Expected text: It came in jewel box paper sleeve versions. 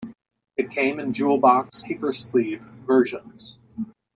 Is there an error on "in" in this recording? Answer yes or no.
no